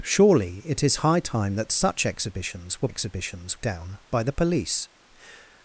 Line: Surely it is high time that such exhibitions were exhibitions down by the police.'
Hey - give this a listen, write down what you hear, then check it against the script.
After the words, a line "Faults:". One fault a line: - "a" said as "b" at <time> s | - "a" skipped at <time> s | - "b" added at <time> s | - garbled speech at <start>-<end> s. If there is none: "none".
Surely it is high time that such exhibitions were exhibitions down by the police.'
Faults:
none